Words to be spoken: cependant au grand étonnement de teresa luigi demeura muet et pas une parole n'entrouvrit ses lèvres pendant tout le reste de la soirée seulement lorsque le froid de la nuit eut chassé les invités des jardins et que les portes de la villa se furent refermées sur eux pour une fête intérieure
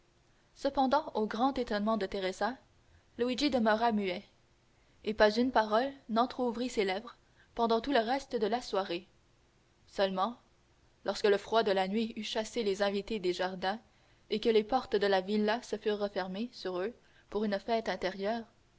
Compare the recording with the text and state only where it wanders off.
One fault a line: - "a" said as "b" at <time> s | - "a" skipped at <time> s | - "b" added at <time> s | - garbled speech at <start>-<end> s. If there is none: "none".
none